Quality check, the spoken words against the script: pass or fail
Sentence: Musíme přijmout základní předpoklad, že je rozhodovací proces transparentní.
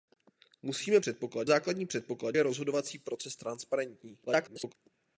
fail